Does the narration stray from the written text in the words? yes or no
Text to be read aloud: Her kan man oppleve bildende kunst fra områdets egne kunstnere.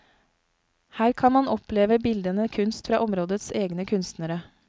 no